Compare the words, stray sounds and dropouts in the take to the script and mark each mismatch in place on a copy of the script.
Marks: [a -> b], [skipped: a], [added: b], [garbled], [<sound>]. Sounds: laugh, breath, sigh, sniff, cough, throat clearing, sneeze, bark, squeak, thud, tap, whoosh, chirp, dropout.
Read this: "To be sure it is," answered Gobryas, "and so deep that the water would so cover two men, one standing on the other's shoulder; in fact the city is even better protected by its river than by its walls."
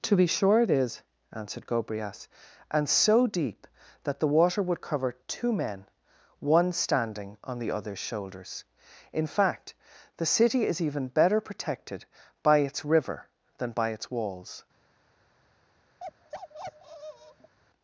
"To be sure it is," answered Gobryas, "and so deep that the water would [skipped: so] cover two men, one standing on the other's [shoulder; -> shoulders] in fact the city is even better protected by its river than by its walls." [bark]